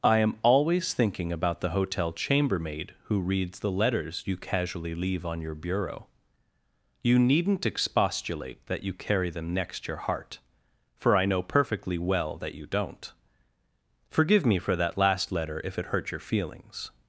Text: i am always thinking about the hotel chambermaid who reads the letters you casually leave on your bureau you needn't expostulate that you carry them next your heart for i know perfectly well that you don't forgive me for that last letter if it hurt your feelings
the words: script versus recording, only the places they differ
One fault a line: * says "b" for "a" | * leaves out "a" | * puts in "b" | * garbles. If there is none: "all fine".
all fine